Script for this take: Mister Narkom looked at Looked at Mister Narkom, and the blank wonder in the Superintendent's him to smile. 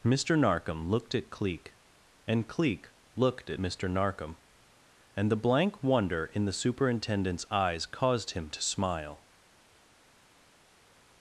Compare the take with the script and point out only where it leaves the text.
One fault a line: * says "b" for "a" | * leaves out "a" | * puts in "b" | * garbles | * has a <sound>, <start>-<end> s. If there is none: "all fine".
* puts in "Cleek and Cleek"
* puts in "eyes caused"